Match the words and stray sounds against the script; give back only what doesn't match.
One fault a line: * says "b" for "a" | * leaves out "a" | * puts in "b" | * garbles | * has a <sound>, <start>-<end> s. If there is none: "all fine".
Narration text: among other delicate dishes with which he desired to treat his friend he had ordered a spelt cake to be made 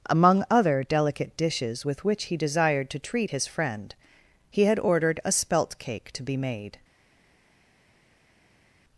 all fine